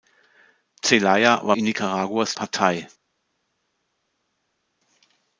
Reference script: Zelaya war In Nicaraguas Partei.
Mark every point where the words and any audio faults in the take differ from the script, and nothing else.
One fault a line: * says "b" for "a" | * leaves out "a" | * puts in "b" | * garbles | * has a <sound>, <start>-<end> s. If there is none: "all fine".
all fine